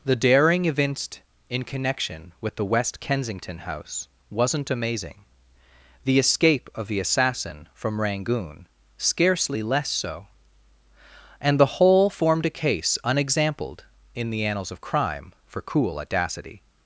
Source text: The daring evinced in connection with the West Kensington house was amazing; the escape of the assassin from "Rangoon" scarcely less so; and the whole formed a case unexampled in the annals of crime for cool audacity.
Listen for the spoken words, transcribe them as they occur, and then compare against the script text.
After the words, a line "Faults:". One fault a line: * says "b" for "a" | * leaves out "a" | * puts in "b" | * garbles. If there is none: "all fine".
The daring evinced in connection with the West Kensington house wasn't amazing; the escape of the assassin from "Rangoon" scarcely less so; and the whole formed a case unexampled in the annals of crime for cool audacity.
Faults:
* says "wasn't" for "was"